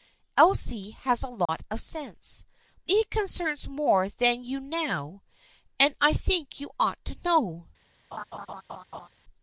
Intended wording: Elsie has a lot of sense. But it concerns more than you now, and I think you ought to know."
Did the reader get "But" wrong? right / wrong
wrong